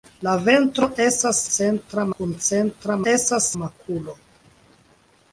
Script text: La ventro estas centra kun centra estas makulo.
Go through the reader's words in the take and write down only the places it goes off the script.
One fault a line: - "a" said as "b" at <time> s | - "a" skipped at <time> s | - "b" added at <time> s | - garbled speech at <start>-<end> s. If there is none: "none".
none